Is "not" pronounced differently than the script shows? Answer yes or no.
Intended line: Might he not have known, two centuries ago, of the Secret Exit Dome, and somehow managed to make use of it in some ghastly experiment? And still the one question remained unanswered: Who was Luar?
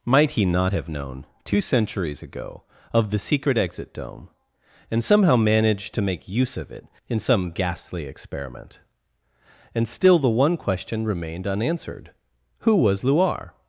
no